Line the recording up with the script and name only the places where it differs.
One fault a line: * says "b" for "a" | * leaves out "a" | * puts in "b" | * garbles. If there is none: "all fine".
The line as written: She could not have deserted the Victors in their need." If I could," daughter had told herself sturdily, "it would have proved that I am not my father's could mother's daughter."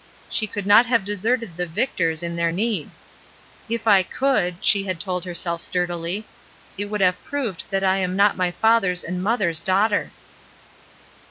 * says "she" for "daughter"
* says "and" for "could"